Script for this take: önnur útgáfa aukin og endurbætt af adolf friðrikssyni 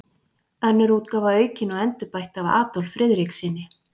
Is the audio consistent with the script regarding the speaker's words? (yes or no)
yes